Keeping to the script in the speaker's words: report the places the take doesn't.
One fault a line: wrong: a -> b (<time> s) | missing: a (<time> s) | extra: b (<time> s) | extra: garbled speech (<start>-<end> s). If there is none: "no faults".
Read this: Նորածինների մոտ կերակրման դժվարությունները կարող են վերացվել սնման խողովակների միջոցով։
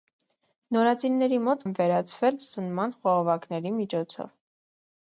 missing: կերակրման դժվարությունները կարող (1.6 s)